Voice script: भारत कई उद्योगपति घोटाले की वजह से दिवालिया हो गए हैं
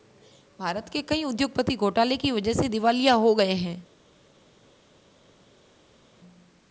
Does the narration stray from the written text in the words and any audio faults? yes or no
yes